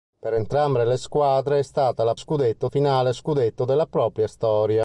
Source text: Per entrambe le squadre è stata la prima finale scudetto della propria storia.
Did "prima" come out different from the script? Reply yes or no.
yes